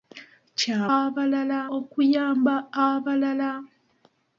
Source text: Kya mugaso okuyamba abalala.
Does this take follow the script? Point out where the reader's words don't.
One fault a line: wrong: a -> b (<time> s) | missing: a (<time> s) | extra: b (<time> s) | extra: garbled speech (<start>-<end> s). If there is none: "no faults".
wrong: mugaso -> abalala (1.0 s)